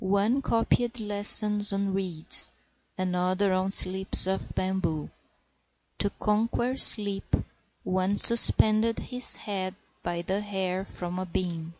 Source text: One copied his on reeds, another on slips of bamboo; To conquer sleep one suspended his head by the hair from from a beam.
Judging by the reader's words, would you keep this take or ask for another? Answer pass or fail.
fail